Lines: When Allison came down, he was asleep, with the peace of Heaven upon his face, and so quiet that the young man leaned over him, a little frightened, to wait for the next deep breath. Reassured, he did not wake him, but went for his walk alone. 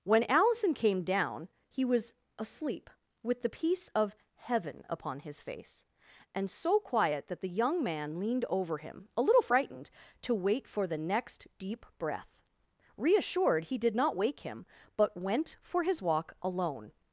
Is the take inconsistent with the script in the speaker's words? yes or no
no